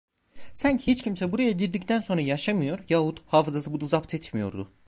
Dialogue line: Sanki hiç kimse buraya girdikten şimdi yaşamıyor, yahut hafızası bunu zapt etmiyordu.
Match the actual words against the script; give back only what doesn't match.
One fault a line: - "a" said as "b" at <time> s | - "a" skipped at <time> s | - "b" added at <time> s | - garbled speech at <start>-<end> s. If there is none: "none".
- "şimdi" said as "sonra" at 2.0 s